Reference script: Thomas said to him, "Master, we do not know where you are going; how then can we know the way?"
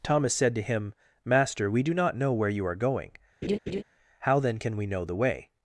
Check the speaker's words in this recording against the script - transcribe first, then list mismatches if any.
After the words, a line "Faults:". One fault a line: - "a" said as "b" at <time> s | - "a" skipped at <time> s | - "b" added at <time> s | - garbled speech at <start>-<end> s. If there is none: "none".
Thomas said to him, "Master, we do not know where you are going; how then can we know the way?"
Faults:
none